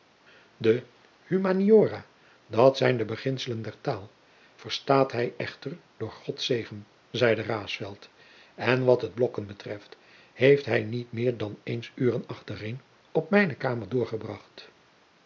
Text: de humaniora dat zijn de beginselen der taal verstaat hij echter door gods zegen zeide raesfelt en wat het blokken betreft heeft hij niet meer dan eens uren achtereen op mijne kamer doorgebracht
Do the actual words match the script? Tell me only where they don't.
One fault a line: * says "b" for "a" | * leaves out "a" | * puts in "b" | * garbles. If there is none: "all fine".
all fine